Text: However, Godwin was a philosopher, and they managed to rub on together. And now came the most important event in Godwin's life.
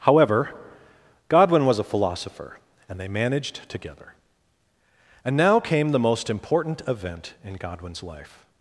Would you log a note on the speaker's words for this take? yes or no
yes